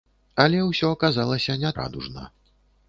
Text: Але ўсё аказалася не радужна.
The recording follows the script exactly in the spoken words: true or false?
true